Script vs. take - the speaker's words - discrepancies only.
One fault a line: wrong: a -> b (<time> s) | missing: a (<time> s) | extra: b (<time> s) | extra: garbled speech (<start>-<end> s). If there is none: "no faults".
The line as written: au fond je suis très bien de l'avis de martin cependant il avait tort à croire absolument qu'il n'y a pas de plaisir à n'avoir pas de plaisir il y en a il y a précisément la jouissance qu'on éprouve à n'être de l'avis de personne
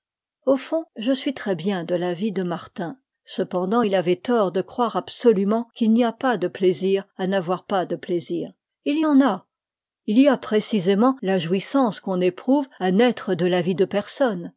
wrong: à -> de (4.5 s)